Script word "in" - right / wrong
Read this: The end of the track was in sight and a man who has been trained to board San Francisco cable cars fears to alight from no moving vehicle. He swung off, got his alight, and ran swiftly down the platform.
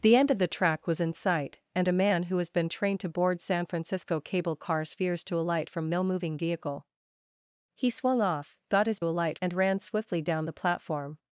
right